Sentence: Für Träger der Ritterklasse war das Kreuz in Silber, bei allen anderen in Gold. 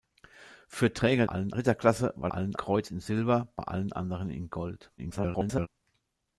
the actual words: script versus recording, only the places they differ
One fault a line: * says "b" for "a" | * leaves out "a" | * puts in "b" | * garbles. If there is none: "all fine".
* says "allen" for "der"
* says "allen" for "das"
* garbles